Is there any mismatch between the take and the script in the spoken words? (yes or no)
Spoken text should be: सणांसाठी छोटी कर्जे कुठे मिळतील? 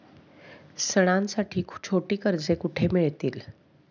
no